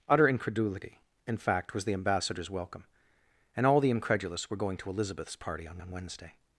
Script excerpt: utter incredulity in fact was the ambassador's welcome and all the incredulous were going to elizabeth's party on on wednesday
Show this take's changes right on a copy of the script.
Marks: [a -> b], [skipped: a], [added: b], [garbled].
utter incredulity in fact was the ambassador's welcome and all the incredulous were going to elizabeth's party on on wednesday